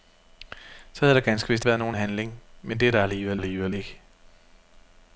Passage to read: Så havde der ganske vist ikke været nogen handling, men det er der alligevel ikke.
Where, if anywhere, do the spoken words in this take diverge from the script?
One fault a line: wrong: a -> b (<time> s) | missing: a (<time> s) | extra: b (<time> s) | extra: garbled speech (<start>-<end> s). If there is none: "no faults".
missing: ikke (1.6 s)
extra: alligevel (3.4 s)